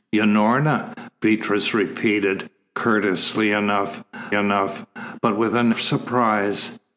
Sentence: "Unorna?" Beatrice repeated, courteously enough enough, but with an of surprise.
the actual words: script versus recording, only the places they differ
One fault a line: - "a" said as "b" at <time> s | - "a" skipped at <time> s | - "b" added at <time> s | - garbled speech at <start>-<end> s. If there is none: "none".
none